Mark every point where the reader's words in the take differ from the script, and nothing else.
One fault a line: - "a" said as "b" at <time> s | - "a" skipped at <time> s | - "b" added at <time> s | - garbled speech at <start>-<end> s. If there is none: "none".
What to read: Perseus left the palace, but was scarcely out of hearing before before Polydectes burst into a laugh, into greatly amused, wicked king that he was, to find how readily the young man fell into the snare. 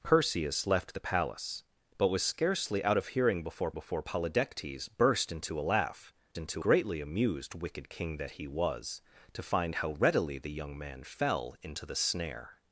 none